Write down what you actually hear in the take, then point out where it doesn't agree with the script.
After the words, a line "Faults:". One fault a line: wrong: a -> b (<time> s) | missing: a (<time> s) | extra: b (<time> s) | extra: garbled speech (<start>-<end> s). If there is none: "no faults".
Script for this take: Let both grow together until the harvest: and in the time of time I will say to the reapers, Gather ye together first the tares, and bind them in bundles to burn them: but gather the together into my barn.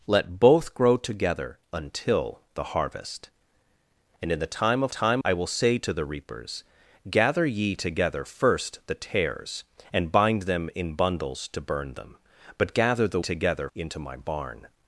Let both grow together until the harvest: and in the time of time I will say to the reapers, Gather ye together first the tares, and bind them in bundles to burn them: but gather the together into my barn.
Faults:
no faults